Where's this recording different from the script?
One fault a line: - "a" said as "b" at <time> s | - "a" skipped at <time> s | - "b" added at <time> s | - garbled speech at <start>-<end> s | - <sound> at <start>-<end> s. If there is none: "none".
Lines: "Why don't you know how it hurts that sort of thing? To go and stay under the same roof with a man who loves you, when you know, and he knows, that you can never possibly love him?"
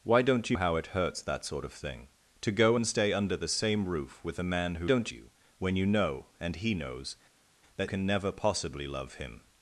- "know" skipped at 0.6 s
- "loves" said as "don't" at 4.8 s
- "you" skipped at 7.9 s